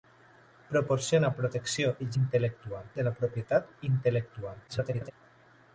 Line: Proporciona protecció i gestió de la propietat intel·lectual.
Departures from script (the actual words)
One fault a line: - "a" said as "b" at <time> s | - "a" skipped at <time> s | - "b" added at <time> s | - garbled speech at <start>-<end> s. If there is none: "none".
- "gestió" said as "intel·lectual" at 2.2 s
- garbled speech at 4.7-5.1 s